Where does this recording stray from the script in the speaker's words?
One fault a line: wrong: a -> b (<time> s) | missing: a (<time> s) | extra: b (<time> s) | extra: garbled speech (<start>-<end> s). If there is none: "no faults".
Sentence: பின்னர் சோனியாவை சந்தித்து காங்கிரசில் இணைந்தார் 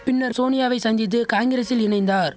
no faults